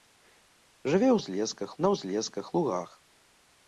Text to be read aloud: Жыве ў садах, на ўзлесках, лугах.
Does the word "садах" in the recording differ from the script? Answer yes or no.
yes